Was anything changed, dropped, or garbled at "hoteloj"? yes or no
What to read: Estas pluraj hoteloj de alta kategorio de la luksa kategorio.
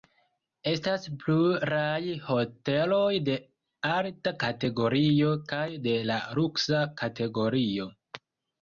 no